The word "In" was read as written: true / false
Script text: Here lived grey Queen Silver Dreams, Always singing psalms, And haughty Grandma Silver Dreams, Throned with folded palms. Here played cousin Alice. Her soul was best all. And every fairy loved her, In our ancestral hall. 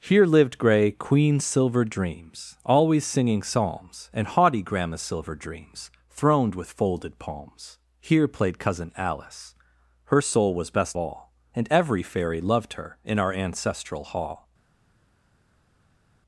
true